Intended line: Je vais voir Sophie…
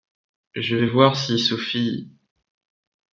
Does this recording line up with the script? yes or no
no